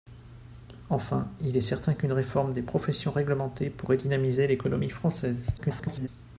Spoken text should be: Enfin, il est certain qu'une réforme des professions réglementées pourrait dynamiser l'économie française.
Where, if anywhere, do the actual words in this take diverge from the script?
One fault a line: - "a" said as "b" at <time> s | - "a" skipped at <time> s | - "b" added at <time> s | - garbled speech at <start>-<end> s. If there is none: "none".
- garbled speech at 5.6-6.1 s